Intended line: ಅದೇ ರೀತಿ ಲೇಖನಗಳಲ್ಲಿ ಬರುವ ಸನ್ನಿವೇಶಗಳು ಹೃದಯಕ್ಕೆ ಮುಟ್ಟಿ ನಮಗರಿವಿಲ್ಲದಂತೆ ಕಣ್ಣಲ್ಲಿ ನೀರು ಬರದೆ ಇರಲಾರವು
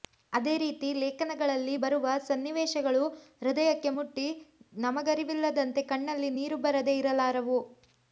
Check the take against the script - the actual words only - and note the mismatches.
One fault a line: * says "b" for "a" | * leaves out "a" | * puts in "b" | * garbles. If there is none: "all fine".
all fine